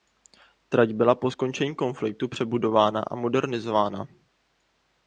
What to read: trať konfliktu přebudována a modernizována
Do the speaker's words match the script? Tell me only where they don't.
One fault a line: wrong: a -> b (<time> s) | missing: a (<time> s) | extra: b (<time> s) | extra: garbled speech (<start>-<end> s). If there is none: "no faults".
extra: byla po skončení (0.9 s)